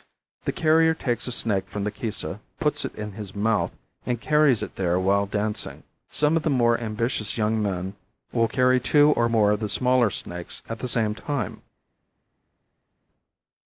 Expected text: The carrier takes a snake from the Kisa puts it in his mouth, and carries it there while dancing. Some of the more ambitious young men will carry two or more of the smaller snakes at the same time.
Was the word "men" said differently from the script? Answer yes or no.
no